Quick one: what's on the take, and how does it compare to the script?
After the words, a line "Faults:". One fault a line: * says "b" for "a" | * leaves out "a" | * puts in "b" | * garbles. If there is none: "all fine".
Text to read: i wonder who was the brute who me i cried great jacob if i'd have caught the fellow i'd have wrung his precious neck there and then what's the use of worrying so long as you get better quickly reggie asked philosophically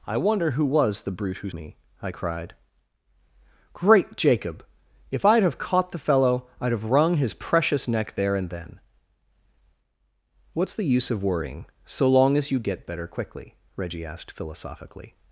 i wonder who was the brute who me i cried great jacob if i'd have caught the fellow i'd have wrung his precious neck there and then what's the use of worrying so long as you get better quickly reggie asked philosophically
Faults:
all fine